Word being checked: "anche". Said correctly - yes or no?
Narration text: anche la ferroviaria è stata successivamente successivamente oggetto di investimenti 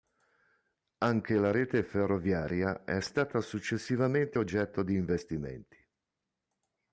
yes